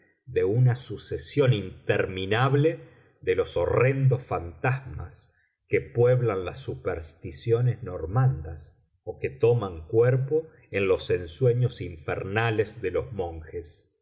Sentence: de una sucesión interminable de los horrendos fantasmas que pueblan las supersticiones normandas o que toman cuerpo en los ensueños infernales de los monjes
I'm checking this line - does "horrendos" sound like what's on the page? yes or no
yes